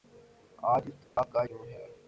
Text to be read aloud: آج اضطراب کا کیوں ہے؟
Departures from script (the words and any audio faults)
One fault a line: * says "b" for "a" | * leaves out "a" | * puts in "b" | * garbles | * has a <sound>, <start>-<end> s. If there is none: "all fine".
* has a dropout, 1.0-1.2 s